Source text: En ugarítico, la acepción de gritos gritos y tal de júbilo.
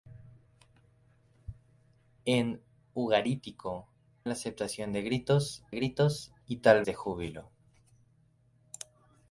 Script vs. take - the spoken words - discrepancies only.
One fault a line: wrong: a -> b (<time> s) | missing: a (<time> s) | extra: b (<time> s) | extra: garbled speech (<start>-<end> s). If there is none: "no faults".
no faults